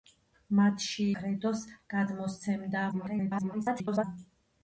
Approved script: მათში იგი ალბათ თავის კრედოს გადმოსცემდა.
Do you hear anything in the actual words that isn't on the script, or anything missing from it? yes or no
yes